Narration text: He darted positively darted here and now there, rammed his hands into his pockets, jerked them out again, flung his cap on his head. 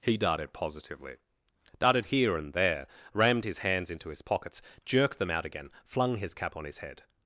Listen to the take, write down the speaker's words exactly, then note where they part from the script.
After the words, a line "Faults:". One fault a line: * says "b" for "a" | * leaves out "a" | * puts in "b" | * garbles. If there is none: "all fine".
He darted positively darted here and there, rammed his hands into his pockets, jerked them out again, flung his cap on his head.
Faults:
* leaves out "now"